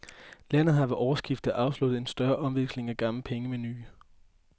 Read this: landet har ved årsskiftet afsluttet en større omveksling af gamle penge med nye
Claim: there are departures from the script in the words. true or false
false